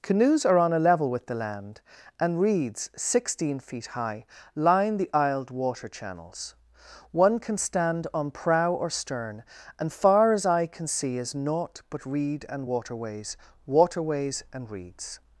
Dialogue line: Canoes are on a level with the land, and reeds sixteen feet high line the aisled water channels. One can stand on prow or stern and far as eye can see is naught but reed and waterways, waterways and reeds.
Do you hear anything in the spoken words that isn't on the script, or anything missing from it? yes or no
no